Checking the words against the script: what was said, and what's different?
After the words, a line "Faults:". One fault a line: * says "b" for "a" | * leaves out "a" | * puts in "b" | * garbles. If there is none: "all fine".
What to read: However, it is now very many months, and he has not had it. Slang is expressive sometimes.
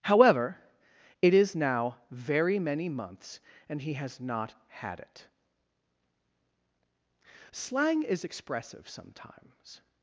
However, it is now very many months, and he has not had it. Slang is expressive sometimes.
Faults:
all fine